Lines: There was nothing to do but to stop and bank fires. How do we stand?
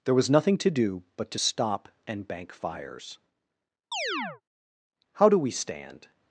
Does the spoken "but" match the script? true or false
true